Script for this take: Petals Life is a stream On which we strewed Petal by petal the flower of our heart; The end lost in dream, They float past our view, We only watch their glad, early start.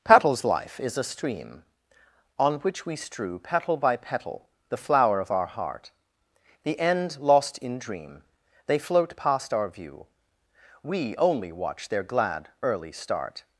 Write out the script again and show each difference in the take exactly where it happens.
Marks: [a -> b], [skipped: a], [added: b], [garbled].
Petals Life is a stream On which we [strewed -> strew] Petal by petal the flower of our heart; The end lost in dream, They float past our view, We only watch their glad, early start.